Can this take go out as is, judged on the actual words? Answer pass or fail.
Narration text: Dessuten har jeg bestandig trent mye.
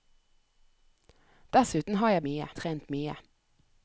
fail